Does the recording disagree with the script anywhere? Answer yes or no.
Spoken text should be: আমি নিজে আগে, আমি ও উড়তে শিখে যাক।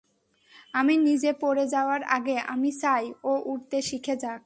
yes